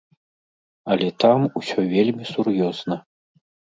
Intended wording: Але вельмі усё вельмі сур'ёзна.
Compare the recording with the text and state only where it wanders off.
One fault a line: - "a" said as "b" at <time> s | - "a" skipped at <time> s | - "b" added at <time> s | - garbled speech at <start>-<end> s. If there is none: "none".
- "вельмі" said as "там" at 1.2 s